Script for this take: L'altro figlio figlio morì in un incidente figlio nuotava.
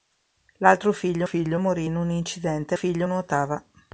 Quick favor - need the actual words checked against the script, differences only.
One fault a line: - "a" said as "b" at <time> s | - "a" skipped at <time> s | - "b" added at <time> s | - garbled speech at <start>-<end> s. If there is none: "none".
none